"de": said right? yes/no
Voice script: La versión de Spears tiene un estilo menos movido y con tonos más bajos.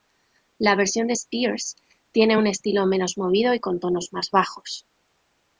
yes